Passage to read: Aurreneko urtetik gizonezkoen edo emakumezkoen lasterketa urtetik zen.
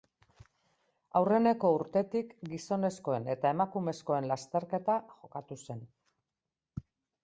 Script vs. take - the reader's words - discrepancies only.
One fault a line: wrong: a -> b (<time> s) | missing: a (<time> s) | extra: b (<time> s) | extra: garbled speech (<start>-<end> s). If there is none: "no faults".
wrong: edo -> eta (3.4 s)
wrong: urtetik -> jokatu (5.2 s)